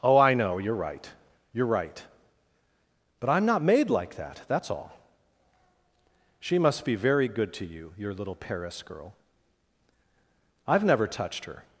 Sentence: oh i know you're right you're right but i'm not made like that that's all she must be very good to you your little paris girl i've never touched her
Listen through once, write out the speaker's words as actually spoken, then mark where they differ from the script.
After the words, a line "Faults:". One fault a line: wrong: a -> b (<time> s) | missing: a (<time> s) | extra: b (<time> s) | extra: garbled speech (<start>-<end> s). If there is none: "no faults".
oh i know you're right you're right but i'm not made like that that's all she must be very good to you your little paris girl i've never touched her
Faults:
no faults